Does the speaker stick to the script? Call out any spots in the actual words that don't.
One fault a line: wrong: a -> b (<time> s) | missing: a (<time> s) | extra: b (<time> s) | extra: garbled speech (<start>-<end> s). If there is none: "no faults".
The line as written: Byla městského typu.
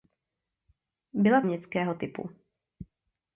no faults